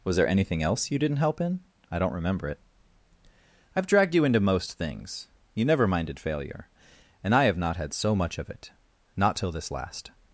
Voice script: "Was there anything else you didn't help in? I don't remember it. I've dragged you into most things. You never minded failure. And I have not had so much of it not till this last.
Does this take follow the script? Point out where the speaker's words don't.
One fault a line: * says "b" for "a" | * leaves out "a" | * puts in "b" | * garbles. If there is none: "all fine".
all fine